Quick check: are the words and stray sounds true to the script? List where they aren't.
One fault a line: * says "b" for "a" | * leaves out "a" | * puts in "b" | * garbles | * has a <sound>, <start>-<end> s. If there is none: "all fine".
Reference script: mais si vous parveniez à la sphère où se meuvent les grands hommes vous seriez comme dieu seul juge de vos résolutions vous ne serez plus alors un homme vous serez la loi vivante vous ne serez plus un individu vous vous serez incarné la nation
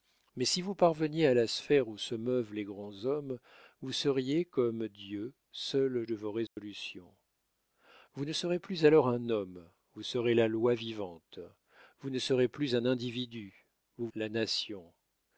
* leaves out "juge"
* has a dropout, 6.5-6.6 s
* leaves out "vous serez incarné"